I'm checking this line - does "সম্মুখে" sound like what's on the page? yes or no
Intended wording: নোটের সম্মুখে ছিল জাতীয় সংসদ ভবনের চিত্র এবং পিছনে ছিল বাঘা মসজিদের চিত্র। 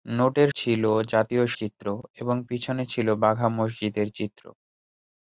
no